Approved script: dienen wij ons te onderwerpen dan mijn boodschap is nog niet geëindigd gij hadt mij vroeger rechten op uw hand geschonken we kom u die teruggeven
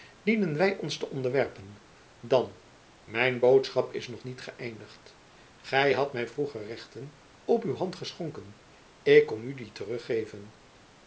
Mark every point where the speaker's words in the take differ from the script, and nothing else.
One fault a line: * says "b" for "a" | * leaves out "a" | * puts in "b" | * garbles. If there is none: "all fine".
* says "ik" for "we"